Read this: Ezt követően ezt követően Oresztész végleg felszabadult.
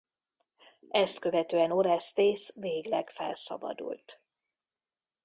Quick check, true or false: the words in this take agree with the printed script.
false